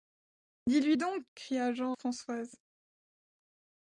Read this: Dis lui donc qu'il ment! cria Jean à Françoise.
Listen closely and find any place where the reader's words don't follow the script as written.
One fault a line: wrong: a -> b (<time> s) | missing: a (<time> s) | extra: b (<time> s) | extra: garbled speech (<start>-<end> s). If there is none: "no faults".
missing: qu'il ment (1.3 s)
missing: à (2.0 s)